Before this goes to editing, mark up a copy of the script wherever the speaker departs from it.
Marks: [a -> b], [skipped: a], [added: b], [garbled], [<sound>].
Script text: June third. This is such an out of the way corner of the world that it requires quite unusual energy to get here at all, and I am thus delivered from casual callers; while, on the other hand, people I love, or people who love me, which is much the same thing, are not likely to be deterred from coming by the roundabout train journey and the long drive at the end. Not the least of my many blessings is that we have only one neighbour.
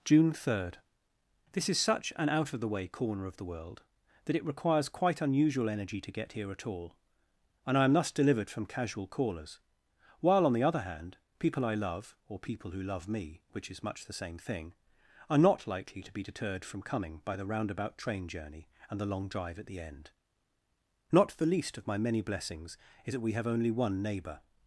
June third. This is such an out of the way corner of the world that it requires quite unusual energy to get here at all, and I am thus delivered from casual callers; while, on the other hand, people I love, or people who love me, which is much the same thing, are not likely to be deterred from coming by the roundabout train journey and the long drive at the end. Not the least of my many blessings is that we have only one neighbour.